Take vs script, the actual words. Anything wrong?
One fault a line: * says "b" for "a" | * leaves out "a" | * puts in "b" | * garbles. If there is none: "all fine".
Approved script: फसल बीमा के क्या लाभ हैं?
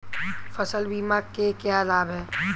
all fine